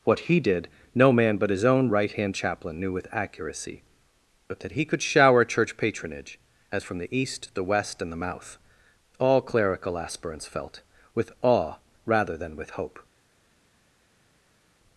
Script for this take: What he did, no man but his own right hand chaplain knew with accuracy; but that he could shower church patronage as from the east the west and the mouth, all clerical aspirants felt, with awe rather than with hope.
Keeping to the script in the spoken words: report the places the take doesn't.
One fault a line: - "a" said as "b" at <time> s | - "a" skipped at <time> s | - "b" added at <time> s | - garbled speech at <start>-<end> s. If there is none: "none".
none